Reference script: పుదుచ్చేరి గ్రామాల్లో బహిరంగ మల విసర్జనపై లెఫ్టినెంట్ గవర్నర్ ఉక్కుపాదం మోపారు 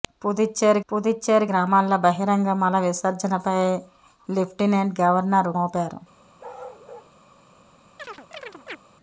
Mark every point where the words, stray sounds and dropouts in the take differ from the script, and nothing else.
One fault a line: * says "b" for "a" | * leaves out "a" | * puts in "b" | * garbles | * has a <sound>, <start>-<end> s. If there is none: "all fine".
* puts in "పుదుచ్చేరి"
* leaves out "ఉక్కుపాదం"
* has a bark, 6.4-7.1 s
* has a chirp, 8.0-8.8 s